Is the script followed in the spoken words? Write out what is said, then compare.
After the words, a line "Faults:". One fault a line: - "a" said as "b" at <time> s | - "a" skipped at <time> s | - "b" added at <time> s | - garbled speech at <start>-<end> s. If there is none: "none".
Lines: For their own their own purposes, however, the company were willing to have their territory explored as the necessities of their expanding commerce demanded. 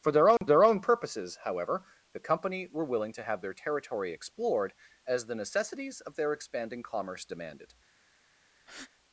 For their own their own purposes, however, the company were willing to have their territory explored as the necessities of their expanding commerce demanded.
Faults:
none